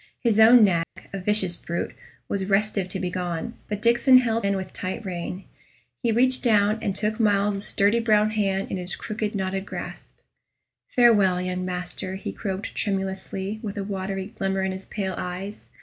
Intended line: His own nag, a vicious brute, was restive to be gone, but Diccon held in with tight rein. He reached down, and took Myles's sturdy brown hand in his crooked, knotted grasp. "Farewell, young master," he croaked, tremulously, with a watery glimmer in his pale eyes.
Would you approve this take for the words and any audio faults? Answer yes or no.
no